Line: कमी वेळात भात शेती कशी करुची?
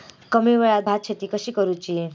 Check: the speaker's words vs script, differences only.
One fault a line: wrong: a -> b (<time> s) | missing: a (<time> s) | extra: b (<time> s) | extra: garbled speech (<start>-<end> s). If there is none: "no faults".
no faults